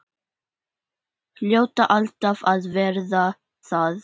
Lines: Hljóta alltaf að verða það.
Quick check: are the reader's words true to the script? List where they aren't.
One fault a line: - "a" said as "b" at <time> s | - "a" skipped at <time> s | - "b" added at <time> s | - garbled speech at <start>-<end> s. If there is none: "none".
none